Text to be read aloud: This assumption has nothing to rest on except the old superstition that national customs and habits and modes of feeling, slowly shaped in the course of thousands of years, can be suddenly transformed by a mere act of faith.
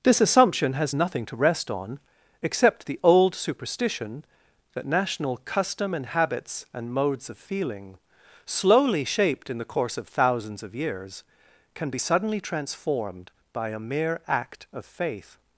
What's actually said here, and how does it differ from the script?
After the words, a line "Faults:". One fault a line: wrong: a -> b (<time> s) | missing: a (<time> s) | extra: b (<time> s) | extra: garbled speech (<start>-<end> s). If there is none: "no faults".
This assumption has nothing to rest on except the old superstition that national custom and habits and modes of feeling, slowly shaped in the course of thousands of years, can be suddenly transformed by a mere act of faith.
Faults:
wrong: customs -> custom (5.4 s)